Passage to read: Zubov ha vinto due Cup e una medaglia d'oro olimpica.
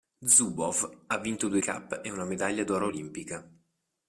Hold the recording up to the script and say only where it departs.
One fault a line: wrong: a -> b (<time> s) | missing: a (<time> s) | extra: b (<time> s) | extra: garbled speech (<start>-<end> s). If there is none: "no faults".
no faults